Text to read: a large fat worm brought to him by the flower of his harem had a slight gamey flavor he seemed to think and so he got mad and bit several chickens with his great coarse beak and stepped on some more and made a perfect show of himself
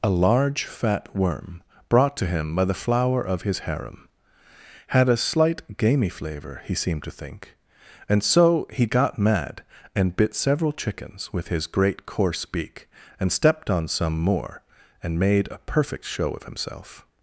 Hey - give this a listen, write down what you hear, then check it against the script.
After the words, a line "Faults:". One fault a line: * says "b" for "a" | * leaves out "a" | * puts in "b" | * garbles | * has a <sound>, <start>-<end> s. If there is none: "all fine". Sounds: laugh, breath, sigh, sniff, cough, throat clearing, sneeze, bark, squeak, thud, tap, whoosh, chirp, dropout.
a large fat worm brought to him by the flower of his harem had a slight gamey flavor he seemed to think and so he got mad and bit several chickens with his great coarse beak and stepped on some more and made a perfect show of himself
Faults:
all fine